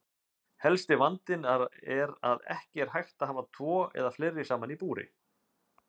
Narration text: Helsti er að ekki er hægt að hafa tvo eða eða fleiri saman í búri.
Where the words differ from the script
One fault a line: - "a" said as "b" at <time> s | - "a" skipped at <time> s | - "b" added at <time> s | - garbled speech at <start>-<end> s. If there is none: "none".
- "vandinn" added at 1.0 s
- "eða" skipped at 4.1 s